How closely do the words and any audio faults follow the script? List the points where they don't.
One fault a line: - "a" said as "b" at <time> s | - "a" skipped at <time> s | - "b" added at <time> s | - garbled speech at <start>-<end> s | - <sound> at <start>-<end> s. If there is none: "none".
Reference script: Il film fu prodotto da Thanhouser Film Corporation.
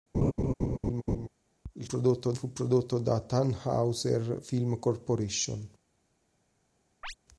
- laugh at 0.1-1.3 s
- "film" said as "prodotto" at 1.8 s
- chirp at 7.0-7.1 s